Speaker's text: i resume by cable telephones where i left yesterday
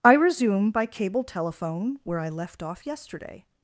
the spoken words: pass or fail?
fail